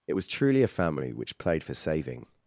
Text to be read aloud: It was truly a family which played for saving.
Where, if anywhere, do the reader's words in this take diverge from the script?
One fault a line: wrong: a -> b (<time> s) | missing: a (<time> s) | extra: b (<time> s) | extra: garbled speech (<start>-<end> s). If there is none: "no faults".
no faults